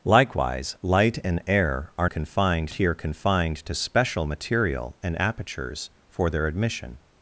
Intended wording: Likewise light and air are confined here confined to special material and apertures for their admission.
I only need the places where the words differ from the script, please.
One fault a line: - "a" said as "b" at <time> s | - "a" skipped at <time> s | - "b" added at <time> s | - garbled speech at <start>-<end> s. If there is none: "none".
none